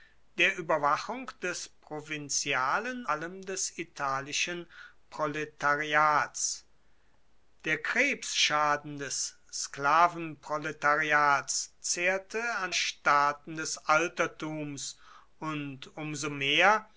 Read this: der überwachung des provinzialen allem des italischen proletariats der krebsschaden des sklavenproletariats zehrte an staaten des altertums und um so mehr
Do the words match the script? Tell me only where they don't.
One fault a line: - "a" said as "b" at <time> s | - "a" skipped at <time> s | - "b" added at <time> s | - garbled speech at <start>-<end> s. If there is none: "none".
none